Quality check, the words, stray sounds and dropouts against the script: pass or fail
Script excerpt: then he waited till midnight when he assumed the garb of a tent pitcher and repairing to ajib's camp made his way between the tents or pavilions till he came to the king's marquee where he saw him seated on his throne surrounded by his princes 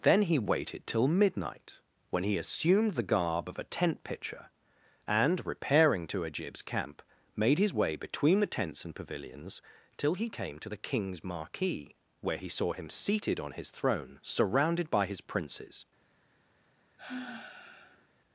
fail